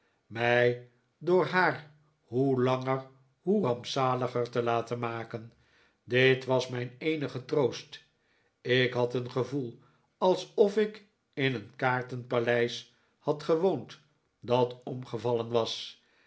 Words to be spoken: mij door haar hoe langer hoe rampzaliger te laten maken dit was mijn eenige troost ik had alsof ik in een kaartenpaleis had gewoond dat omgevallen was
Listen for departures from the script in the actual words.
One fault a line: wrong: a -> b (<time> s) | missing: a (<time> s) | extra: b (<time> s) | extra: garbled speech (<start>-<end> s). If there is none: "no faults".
extra: een gevoel (9.1 s)